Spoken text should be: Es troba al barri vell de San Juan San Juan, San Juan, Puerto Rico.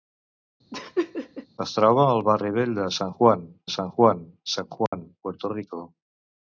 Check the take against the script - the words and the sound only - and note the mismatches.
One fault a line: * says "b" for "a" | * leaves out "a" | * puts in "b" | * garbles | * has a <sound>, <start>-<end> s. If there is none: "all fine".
* has a laugh, 0.7-1.5 s
* has a dropout, 4.9-4.9 s